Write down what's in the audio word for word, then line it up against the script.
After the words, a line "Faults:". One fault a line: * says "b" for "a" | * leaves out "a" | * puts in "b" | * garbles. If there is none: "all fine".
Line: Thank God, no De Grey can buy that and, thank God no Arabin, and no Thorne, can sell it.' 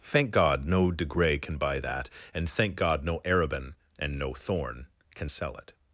Thank God, no De Grey can buy that and, thank God no Arabin, and no Thorne, can sell it.'
Faults:
all fine